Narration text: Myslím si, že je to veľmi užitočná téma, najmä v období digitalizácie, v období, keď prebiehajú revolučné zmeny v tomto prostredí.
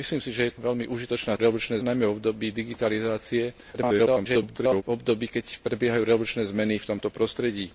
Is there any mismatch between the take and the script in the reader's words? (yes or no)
yes